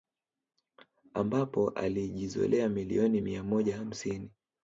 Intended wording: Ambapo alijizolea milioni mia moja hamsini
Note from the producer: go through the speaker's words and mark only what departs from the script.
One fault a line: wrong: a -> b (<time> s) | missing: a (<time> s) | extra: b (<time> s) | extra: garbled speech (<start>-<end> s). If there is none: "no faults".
no faults